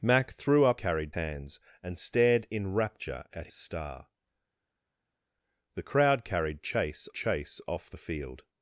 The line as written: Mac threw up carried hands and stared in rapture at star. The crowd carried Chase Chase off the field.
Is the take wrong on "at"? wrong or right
right